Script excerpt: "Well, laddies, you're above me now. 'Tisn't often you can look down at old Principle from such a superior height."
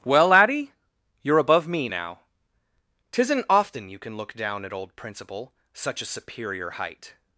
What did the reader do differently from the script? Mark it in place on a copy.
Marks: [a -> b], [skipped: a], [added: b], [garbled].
"Well, [laddies, -> laddie] you're above me now. 'Tisn't often you can look down at old Principle [skipped: from] such a superior height."